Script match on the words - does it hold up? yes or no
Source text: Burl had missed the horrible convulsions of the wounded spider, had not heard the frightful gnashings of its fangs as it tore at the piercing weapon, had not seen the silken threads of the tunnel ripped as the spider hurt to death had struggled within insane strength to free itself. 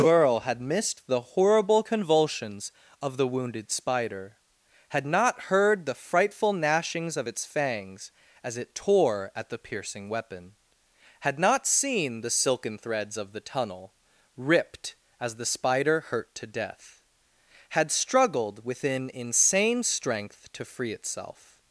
yes